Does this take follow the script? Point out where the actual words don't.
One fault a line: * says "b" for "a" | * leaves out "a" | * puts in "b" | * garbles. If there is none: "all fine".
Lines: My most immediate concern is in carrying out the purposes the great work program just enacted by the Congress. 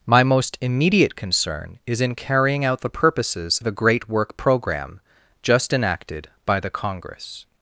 all fine